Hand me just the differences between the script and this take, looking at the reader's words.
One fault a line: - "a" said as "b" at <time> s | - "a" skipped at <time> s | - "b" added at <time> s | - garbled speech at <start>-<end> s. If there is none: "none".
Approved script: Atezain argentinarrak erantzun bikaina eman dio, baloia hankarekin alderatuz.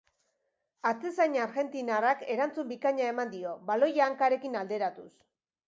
none